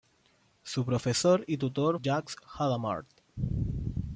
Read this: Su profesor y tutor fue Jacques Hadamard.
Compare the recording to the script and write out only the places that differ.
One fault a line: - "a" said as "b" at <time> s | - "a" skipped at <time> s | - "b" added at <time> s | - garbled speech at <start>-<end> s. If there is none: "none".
- "fue" skipped at 2.0 s